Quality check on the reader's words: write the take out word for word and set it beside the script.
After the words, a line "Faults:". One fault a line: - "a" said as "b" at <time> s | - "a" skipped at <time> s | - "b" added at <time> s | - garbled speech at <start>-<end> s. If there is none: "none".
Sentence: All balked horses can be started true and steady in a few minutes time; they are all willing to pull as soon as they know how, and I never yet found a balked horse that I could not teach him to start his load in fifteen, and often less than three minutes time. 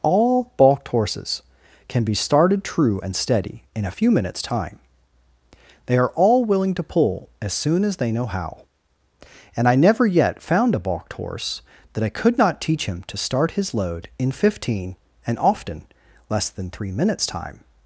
All balked horses can be started true and steady in a few minutes time; they are all willing to pull as soon as they know how, and I never yet found a balked horse that I could not teach him to start his load in fifteen, and often less than three minutes time.
Faults:
none